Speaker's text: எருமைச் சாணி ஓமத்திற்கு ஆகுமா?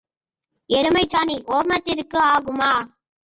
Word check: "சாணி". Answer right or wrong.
right